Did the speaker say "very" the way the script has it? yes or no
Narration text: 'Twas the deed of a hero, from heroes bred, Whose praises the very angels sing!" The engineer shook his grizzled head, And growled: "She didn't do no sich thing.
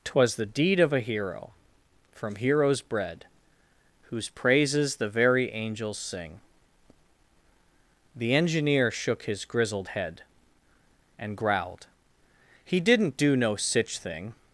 yes